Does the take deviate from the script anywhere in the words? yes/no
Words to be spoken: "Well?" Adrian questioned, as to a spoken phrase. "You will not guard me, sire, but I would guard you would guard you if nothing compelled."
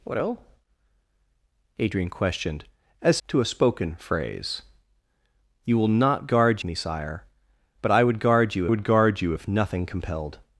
no